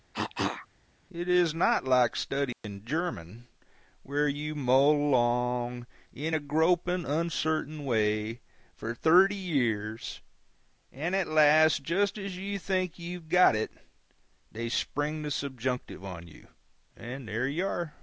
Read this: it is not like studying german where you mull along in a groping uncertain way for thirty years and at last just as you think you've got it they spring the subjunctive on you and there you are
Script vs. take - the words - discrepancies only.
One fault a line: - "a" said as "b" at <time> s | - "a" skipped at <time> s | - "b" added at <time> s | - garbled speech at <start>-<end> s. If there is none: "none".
none